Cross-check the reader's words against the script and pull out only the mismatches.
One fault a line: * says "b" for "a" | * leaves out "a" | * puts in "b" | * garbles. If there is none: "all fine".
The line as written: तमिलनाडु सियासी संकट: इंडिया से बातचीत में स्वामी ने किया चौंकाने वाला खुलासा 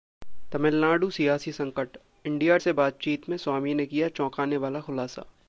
all fine